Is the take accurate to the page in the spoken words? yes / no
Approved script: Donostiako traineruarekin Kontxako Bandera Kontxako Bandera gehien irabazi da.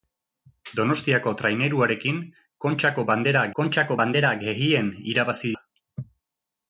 yes